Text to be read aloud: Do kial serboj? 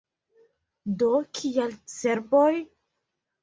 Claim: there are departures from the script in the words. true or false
false